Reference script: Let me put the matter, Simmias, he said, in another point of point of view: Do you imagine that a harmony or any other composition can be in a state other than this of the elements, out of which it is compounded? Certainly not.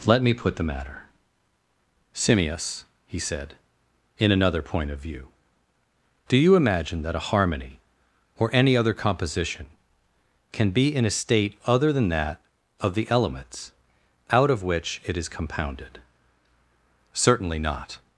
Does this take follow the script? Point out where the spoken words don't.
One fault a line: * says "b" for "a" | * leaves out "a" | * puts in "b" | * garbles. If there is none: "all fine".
* leaves out "point of"
* says "that" for "this"